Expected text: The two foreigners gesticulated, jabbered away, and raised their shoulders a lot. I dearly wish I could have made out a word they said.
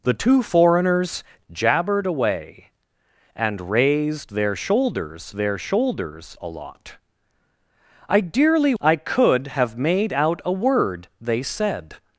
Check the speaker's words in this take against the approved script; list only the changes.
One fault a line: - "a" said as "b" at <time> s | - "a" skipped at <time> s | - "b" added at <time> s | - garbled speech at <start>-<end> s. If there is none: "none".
- "gesticulated" skipped at 1.2 s
- "their shoulders" added at 5.4 s
- "wish" skipped at 8.7 s